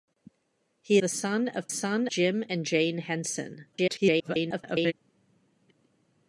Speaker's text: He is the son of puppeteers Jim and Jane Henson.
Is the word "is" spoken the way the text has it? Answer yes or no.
no